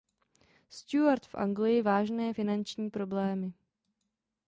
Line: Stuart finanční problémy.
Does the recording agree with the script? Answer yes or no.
no